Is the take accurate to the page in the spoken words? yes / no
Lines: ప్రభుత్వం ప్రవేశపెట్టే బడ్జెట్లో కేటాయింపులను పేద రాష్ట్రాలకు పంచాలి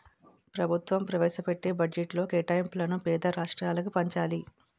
yes